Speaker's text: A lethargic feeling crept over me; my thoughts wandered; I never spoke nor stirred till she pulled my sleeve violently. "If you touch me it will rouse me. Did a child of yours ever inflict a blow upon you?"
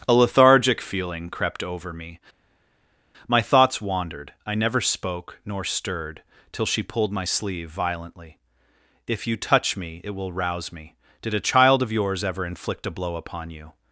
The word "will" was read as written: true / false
true